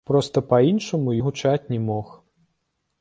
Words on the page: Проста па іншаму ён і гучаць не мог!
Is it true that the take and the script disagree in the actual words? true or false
true